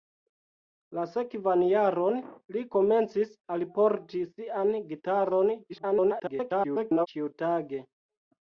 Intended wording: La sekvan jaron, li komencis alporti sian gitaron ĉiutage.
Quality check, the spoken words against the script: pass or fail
fail